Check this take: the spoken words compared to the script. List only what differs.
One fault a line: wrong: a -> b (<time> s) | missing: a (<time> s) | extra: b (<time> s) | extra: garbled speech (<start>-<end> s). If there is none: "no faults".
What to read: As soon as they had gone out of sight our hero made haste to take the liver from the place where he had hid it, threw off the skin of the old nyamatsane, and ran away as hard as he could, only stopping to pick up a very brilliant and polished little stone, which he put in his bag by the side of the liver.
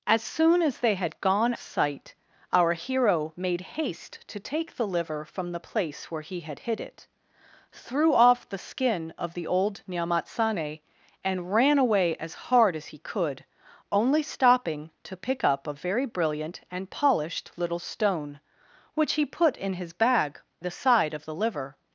missing: out of (1.5 s)
missing: by (20.4 s)